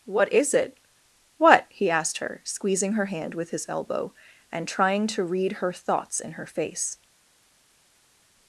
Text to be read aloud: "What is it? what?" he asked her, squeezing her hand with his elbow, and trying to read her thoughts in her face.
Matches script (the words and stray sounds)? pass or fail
pass